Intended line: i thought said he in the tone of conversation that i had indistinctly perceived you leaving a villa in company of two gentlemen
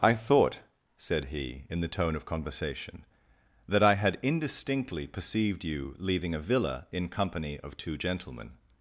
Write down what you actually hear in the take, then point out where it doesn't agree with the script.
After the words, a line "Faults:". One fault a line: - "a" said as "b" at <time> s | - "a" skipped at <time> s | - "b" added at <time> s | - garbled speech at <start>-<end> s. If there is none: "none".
i thought said he in the tone of conversation that i had indistinctly perceived you leaving a villa in company of two gentlemen
Faults:
none